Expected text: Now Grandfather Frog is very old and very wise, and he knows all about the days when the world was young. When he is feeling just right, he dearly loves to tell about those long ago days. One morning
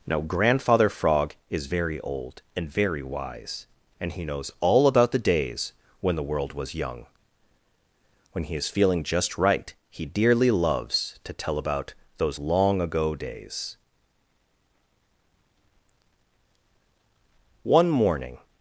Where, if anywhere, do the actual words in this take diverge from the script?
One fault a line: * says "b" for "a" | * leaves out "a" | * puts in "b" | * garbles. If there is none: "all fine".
all fine